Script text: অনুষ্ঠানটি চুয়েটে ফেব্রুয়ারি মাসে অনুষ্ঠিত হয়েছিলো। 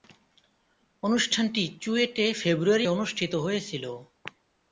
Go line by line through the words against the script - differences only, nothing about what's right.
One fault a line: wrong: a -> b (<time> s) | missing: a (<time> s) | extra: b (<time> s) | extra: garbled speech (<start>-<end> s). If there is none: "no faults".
missing: মাসে (2.9 s)